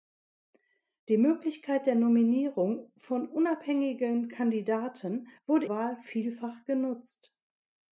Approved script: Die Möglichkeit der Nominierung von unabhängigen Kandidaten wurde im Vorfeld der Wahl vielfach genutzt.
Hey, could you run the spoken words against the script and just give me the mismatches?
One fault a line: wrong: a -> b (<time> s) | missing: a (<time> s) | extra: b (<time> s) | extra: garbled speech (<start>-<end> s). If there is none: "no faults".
missing: im Vorfeld der (5.7 s)